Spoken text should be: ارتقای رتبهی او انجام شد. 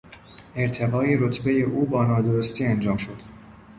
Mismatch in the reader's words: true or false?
true